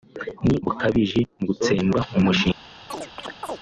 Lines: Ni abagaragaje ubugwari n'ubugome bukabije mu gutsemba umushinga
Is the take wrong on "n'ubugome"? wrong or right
wrong